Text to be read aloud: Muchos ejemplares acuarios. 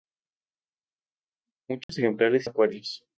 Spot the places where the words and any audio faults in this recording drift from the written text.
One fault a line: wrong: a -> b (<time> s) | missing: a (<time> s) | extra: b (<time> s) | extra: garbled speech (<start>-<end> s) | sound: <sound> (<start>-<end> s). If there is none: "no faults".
sound: dropout (1.8-1.9 s)